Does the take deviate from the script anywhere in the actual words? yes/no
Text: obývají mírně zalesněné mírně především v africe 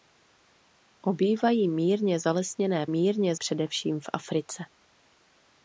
no